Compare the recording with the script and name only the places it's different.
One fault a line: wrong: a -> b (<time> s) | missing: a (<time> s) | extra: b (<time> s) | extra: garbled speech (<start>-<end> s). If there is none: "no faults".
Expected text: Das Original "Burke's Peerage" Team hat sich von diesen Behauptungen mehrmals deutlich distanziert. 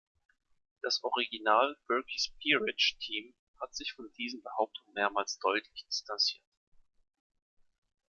no faults